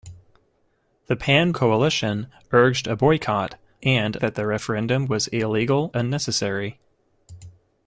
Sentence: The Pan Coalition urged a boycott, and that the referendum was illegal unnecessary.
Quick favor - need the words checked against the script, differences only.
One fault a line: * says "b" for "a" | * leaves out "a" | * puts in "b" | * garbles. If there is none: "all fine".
all fine